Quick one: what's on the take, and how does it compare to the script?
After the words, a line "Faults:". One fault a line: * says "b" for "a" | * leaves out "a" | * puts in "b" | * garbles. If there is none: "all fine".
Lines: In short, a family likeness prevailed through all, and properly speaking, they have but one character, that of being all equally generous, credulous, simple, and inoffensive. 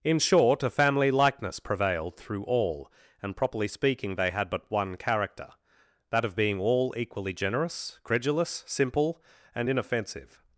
In short, a family likeness prevailed through all, and properly speaking, they had but one character, that of being all equally generous, credulous, simple, and inoffensive.
Faults:
* says "had" for "have"